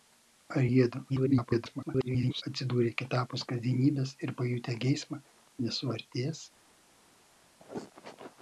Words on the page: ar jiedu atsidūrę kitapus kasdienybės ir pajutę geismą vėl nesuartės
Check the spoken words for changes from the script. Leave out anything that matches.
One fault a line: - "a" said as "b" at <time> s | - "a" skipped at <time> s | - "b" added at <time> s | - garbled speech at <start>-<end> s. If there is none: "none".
- garbled speech at 1.1-2.4 s
- "vėl" skipped at 5.2 s